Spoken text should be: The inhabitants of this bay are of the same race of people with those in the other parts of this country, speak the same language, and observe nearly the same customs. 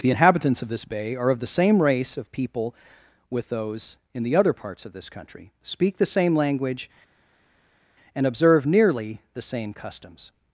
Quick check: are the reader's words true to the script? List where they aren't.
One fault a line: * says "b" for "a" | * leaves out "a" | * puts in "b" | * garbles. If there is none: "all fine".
all fine